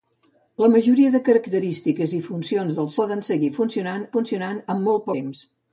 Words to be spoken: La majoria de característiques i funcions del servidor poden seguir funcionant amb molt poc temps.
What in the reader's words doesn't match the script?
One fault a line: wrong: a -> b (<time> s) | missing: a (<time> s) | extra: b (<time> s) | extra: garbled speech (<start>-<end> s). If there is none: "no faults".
missing: servidor (2.9 s)
extra: funcionant (4.2 s)
missing: poc (5.1 s)